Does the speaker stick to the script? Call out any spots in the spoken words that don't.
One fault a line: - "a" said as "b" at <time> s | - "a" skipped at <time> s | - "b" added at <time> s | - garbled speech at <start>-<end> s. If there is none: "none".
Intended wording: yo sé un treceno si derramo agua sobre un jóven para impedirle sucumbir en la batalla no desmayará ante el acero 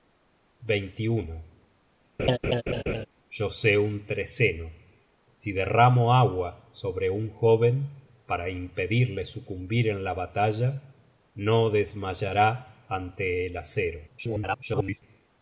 - garbled speech at 14.1-15.0 s